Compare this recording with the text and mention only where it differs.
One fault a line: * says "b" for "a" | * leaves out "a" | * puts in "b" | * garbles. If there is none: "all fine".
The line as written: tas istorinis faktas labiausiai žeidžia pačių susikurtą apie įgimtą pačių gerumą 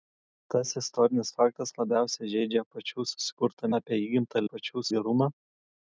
all fine